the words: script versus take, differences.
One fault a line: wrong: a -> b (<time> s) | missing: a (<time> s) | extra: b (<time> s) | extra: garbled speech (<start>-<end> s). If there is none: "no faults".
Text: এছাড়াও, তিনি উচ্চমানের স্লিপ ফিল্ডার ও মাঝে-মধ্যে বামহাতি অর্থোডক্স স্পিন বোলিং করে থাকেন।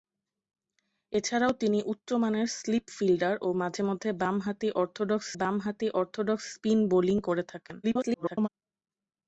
extra: বামহাতি অর্থোডক্স (5.3 s)
extra: garbled speech (7.8-8.5 s)